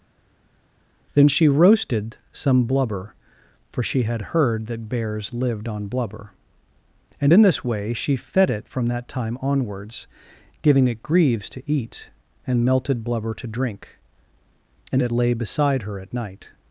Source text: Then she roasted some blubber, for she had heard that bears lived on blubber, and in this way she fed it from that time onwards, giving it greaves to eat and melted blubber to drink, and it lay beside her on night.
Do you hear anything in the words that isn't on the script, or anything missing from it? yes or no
yes